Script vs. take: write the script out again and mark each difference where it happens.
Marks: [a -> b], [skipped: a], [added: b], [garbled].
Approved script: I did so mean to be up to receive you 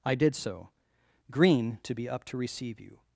I did so [mean -> green] to be up to receive you